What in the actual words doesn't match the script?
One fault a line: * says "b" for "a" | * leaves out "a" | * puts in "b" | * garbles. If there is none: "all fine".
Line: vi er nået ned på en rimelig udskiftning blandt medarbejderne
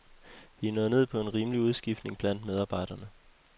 all fine